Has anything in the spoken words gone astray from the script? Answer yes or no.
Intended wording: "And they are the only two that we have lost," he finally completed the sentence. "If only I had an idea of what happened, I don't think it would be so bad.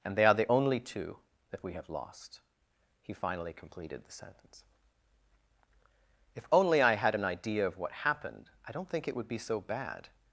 no